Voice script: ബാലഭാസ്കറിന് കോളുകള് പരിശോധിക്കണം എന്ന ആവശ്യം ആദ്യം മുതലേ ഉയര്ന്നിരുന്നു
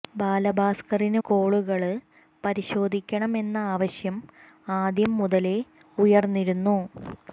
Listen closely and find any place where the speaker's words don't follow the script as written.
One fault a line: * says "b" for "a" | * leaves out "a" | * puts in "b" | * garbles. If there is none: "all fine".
all fine